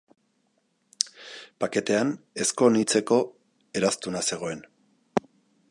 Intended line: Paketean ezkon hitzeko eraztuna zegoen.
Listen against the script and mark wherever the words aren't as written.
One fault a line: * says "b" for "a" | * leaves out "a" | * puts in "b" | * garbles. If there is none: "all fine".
all fine